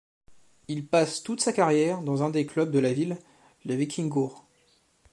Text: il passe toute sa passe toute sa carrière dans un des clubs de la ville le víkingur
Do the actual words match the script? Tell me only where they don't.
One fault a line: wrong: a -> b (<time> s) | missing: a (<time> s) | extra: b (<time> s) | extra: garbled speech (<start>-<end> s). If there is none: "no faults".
missing: passe toute sa (1.5 s)